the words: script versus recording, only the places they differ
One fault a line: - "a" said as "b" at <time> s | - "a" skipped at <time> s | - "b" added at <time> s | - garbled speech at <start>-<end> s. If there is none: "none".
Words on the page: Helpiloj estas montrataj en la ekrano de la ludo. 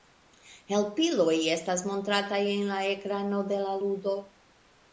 none